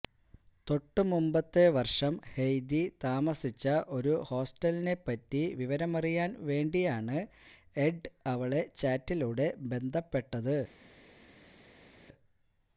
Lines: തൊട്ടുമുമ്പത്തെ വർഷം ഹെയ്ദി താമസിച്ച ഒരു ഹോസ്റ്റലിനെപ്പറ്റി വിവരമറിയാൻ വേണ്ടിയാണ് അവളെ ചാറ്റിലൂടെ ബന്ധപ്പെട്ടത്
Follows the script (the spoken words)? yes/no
no